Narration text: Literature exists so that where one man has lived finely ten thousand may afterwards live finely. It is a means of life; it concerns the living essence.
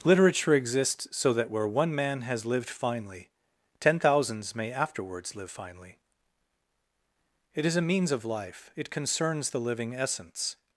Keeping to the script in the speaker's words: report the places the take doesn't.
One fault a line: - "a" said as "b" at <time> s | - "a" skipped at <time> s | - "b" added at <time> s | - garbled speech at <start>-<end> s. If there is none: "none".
- "thousand" said as "thousands" at 4.0 s